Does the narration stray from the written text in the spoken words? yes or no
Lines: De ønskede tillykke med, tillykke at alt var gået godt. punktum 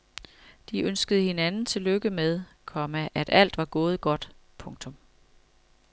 yes